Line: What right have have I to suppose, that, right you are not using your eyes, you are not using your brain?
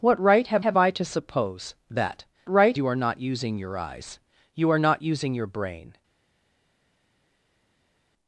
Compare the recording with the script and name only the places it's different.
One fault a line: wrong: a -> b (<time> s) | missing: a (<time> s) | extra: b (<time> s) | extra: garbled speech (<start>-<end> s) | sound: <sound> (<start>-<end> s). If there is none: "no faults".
no faults